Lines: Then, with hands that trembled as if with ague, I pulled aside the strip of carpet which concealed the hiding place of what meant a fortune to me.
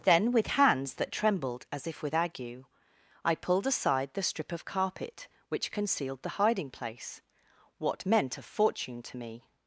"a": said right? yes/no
yes